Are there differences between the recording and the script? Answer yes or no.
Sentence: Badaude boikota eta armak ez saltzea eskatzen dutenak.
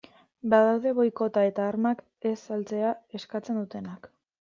no